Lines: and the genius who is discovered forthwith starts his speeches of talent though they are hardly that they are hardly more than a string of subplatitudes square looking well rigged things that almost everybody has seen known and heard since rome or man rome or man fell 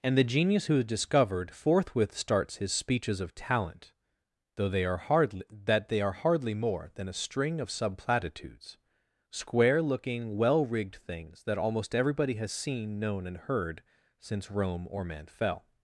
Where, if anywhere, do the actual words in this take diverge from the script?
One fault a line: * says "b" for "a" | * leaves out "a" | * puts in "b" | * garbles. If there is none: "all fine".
* leaves out "rome or man"